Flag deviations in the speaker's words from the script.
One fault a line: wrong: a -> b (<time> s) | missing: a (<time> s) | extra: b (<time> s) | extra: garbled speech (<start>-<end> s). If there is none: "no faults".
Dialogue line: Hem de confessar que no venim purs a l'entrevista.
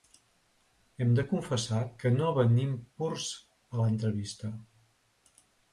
no faults